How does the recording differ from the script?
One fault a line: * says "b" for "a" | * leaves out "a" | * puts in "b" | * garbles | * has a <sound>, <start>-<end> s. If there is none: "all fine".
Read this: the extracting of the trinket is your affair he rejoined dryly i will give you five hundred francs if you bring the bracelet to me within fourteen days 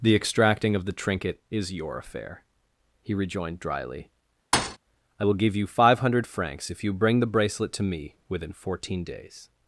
* has a thud, 4.5-4.8 s